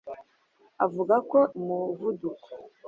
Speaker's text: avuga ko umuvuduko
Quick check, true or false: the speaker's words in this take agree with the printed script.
true